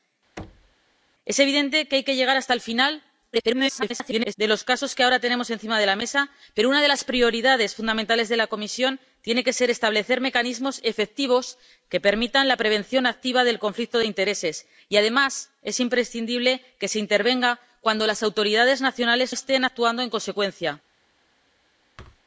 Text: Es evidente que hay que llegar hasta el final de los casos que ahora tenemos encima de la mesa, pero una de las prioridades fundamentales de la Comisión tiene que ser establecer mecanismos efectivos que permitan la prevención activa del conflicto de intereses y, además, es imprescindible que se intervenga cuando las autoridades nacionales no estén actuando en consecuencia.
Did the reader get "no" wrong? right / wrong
wrong